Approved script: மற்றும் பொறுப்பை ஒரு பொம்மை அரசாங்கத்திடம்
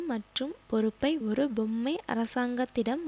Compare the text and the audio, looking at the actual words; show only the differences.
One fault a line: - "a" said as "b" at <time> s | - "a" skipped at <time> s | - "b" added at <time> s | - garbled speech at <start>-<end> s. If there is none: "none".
none